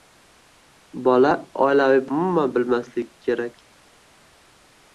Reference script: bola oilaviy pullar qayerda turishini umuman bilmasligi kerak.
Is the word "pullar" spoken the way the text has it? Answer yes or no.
no